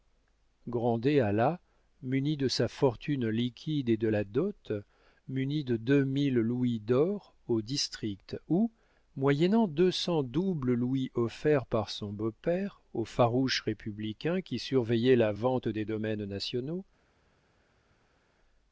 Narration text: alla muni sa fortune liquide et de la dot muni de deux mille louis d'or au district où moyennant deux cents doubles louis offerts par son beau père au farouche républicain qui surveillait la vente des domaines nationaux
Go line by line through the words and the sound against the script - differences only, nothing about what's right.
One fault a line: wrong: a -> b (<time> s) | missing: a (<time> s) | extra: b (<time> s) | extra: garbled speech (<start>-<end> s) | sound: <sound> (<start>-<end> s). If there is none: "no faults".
extra: de (2.4 s)